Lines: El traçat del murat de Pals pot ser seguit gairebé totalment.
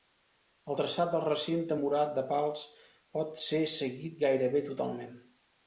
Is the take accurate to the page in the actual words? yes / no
no